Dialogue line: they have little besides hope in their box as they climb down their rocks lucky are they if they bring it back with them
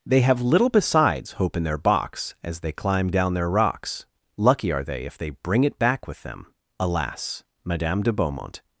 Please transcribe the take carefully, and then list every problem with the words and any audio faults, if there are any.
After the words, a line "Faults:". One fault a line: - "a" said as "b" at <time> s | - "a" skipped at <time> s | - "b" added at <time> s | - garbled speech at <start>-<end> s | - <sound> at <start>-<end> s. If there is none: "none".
they have little besides hope in their box as they climb down their rocks lucky are they if they bring it back with them alas madame de beaumont
Faults:
- "alas madame de beaumont" added at 6.8 s